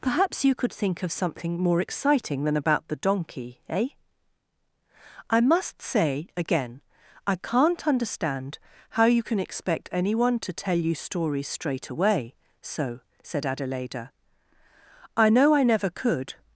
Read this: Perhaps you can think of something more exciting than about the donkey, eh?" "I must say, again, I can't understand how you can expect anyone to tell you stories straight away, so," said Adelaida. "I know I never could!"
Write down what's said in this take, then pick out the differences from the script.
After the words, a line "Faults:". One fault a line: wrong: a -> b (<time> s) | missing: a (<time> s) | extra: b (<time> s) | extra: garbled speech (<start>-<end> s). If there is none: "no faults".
Perhaps you could think of something more exciting than about the donkey, eh?" "I must say, again, I can't understand how you can expect anyone to tell you stories straight away, so," said Adelaida. "I know I never could!"
Faults:
wrong: can -> could (0.6 s)